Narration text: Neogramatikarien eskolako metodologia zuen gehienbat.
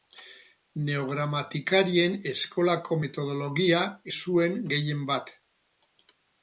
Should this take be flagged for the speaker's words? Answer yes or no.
no